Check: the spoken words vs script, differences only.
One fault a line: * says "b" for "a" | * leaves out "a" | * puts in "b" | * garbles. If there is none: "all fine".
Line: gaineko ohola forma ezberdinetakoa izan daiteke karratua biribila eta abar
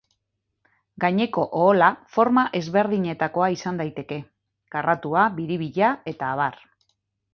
all fine